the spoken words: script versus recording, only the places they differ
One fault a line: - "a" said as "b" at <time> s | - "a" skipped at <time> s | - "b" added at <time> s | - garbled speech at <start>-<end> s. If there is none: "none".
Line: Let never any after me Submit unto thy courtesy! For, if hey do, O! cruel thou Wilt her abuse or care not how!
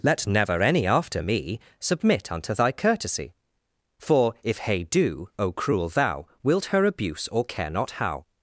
none